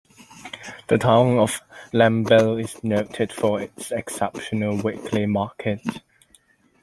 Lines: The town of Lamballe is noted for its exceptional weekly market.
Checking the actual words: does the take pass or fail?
pass